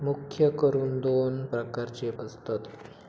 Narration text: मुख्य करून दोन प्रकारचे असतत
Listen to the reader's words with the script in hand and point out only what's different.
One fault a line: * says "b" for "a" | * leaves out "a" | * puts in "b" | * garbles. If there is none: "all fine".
all fine